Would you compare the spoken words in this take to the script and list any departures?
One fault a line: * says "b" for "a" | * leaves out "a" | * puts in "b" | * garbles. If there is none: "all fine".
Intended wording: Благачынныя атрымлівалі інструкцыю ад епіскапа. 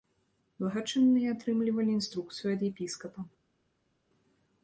all fine